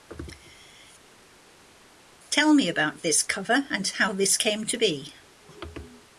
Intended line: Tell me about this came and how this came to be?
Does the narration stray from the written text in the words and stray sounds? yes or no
yes